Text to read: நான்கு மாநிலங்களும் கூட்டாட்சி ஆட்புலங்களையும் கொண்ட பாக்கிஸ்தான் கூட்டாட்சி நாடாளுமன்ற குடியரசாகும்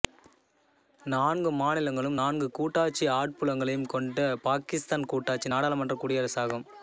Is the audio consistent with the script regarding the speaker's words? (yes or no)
no